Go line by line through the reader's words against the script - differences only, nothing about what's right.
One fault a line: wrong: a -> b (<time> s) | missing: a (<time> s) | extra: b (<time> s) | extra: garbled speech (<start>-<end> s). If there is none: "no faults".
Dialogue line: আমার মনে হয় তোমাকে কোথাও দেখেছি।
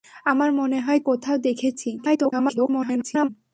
missing: তোমাকে (1.0 s)
extra: garbled speech (2.0-3.3 s)